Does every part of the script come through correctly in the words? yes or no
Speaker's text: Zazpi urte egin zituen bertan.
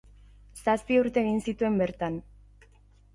yes